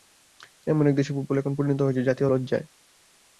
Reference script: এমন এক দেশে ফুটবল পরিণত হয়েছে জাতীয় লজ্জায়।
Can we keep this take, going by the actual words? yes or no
no